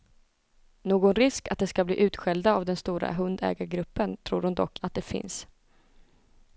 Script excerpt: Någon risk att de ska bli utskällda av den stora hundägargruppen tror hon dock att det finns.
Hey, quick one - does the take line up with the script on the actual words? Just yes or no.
yes